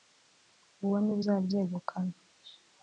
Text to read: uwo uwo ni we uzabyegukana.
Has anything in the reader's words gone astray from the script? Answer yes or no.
yes